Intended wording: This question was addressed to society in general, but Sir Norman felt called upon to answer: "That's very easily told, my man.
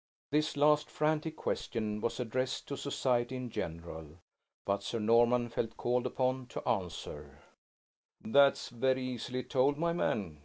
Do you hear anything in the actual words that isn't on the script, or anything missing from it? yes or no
yes